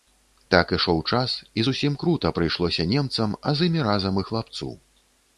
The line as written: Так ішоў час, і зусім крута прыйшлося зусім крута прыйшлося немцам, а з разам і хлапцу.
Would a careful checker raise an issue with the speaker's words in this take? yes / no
yes